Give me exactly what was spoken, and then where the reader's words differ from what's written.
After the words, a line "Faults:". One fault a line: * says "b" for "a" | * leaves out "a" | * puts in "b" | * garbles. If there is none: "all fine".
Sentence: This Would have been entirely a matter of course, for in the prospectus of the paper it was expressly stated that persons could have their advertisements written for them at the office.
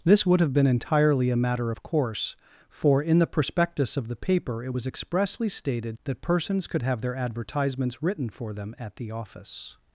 This Would have been entirely a matter of course, for in the prospectus of the paper it was expressly stated that persons could have their advertisements written for them at the office.
Faults:
all fine